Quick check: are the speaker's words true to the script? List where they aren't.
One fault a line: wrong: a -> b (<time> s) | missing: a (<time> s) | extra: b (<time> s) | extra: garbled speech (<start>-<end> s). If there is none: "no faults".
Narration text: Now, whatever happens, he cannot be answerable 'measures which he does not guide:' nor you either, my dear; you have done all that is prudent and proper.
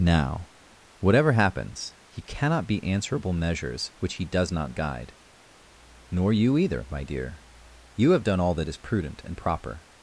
no faults